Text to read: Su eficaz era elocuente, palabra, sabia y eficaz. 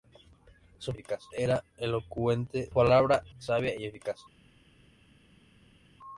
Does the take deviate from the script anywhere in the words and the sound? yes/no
no